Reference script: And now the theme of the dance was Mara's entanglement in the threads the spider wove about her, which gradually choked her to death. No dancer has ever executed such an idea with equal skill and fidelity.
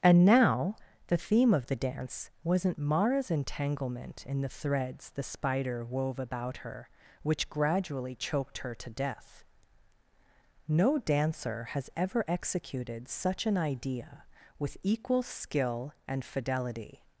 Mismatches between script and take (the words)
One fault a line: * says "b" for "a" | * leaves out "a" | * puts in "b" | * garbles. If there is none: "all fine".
* says "wasn't" for "was"